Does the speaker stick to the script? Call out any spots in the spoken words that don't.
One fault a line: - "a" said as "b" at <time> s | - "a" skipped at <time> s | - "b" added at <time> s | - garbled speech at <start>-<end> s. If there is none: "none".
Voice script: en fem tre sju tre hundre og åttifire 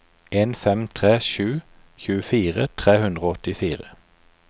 - "tjuefire" added at 2.0 s